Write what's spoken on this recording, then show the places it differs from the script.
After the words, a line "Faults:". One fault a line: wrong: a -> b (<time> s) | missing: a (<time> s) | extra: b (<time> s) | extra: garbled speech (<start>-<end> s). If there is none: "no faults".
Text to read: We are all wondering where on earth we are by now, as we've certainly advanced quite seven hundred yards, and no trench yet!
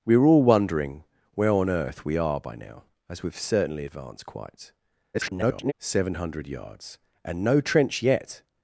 We are all wondering where on earth we are by now, as we've certainly advanced quite [garbled] seven hundred yards, and no trench yet!
Faults:
extra: garbled speech (5.1-5.7 s)